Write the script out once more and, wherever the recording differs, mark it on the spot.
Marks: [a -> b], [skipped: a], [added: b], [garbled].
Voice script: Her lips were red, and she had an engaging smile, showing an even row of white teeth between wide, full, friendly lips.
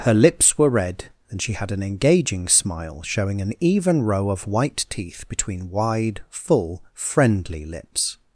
Her lips were red, and she had an engaging smile, showing an even row of white teeth between wide, full, friendly lips.